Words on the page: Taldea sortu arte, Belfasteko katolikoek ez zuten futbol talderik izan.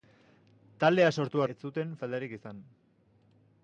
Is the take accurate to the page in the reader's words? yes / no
no